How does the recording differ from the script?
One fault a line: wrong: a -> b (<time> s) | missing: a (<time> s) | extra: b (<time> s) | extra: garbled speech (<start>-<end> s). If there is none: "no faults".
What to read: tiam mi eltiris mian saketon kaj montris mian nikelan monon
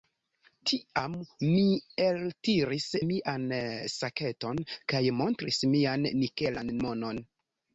no faults